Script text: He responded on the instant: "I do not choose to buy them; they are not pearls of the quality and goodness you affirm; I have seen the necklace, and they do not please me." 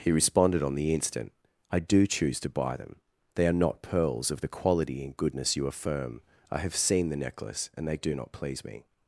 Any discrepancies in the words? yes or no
yes